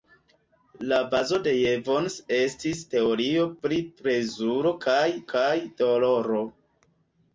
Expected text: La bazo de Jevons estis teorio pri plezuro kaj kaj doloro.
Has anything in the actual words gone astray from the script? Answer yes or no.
no